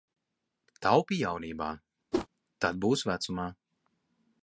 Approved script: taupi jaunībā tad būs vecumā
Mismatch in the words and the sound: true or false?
true